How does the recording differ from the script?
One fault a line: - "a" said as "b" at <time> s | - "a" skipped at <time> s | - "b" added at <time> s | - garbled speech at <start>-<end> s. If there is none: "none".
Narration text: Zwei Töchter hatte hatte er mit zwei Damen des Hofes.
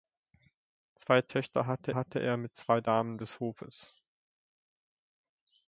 none